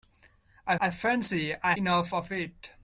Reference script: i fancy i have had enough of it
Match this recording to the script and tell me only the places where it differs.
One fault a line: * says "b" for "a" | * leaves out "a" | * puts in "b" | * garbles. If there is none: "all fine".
* puts in "i"
* leaves out "have had"